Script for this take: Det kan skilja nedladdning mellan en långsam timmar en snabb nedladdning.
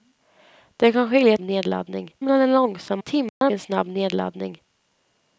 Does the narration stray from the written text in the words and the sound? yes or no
yes